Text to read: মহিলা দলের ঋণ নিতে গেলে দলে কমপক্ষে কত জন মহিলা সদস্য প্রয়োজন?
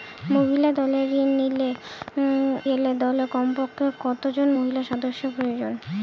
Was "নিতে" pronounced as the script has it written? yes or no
no